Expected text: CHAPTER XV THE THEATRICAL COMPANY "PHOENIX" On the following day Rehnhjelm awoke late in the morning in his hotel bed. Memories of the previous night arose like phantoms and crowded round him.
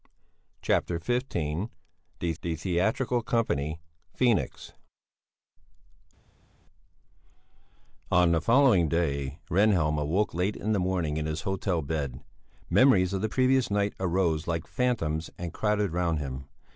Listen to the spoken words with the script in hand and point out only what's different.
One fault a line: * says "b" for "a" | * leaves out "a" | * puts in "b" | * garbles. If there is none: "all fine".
* puts in "THE"